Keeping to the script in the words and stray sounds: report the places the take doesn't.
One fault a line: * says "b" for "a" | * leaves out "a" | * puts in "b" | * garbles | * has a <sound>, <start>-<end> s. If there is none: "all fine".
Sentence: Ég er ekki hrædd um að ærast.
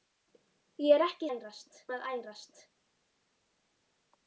* says "ærast" for "hrædd"